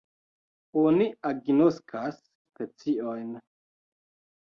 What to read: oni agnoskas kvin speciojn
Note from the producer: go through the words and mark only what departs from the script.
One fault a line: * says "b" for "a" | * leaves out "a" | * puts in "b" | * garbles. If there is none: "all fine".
* leaves out "kvin"